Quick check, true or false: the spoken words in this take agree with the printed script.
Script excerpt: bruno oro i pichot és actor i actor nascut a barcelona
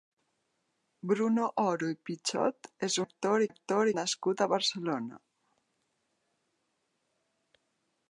true